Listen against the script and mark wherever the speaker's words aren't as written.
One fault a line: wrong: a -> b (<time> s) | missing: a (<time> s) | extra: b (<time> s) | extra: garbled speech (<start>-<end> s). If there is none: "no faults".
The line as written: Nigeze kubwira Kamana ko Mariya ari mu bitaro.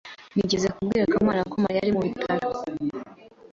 no faults